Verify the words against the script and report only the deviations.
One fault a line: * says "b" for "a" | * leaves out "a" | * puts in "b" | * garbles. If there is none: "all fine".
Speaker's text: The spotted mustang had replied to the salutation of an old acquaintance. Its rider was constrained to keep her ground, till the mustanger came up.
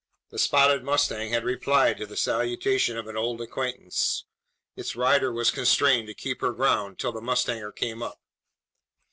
all fine